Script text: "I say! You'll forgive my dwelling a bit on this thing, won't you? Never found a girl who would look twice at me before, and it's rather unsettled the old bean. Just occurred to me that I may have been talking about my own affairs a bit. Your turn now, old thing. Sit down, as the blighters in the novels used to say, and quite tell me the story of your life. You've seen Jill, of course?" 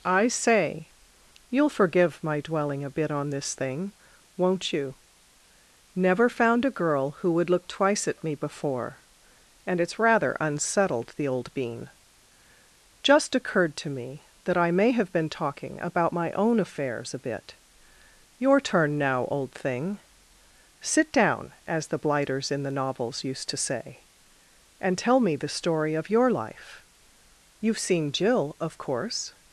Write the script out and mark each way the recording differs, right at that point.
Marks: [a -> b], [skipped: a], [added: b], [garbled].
"I say! You'll forgive my dwelling a bit on this thing, won't you? Never found a girl who would look twice at me before, and it's rather unsettled the old bean. Just occurred to me that I may have been talking about my own affairs a bit. Your turn now, old thing. Sit down, as the blighters in the novels used to say, and [skipped: quite] tell me the story of your life. You've seen Jill, of course?"